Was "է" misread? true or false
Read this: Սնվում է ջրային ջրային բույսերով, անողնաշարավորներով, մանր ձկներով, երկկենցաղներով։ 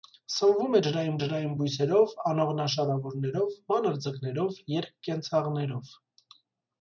false